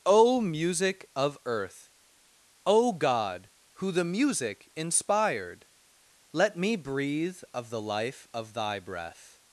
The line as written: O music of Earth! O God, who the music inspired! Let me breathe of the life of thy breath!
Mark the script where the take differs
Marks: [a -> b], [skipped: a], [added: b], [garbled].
O music of Earth! O God, who the music inspired! Let me breathe of the life of thy breath!